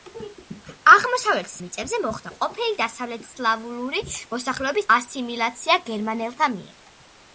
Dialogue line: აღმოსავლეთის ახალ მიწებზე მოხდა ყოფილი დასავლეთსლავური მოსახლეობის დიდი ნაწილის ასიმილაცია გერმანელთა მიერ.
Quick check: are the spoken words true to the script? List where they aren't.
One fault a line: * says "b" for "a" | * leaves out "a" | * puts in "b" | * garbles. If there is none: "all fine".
* leaves out "ახალ"
* leaves out "დიდი ნაწილის"